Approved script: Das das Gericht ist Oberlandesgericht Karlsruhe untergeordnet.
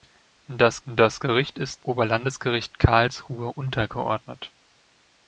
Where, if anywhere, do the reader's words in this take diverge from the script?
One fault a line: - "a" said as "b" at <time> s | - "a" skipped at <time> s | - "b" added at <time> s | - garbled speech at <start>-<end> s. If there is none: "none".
none